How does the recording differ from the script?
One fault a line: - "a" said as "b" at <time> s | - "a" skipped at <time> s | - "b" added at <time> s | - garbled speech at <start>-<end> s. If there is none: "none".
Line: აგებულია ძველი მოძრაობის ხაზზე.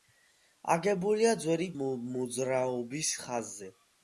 none